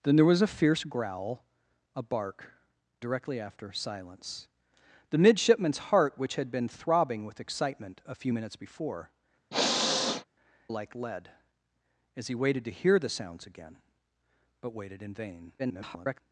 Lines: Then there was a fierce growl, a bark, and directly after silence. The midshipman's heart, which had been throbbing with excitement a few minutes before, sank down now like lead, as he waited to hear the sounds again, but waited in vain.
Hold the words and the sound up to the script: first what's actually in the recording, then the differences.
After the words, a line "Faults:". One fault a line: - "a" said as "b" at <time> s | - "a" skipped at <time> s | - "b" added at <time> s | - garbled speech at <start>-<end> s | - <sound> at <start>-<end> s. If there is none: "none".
Then there was a fierce growl, a bark, directly after silence. The midshipman's heart, which had been throbbing with excitement a few minutes before, like lead, as he waited to hear the sounds again, but waited in vain. [garbled]
Faults:
- "and" skipped at 2.5 s
- "sank down now" skipped at 9.1 s
- sniff at 9.5-10.3 s
- garbled speech at 15.6-16.2 s